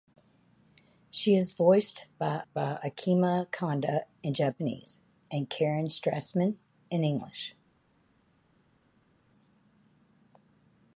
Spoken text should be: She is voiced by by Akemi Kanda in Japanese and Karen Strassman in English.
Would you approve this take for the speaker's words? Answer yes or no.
yes